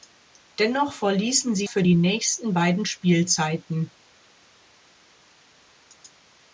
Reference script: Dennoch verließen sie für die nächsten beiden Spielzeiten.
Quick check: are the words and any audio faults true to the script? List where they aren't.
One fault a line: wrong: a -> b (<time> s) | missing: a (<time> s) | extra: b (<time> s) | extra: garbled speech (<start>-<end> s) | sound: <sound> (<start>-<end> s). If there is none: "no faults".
no faults